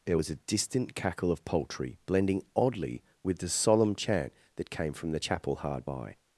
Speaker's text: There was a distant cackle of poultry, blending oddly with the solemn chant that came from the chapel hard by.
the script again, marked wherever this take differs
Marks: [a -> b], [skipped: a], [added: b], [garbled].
There was a distant cackle of poultry, blending oddly with the solemn chant that came from the chapel hard by.